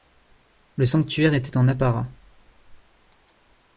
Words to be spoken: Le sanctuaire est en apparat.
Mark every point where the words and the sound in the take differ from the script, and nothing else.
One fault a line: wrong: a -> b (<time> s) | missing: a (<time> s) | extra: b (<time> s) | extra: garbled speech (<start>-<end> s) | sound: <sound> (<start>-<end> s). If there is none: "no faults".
wrong: est -> était (1.3 s)